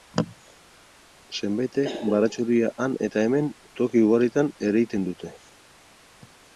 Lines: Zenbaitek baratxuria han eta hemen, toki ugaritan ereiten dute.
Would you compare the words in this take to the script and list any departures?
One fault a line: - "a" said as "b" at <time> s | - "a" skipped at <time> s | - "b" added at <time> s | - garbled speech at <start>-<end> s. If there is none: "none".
none